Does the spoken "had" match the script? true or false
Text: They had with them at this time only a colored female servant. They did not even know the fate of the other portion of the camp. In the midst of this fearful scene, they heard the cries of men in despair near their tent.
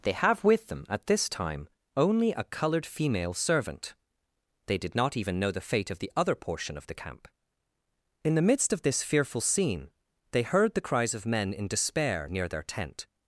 false